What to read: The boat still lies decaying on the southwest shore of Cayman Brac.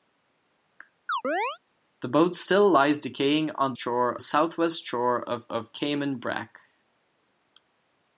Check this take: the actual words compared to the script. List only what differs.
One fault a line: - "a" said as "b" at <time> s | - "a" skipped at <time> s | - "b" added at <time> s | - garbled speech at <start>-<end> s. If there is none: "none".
- "the" said as "shore" at 3.8 s
- "of" added at 5.5 s